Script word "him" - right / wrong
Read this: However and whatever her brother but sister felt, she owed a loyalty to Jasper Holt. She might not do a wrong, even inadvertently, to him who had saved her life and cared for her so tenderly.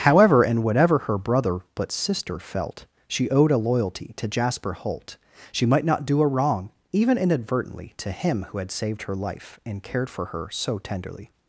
right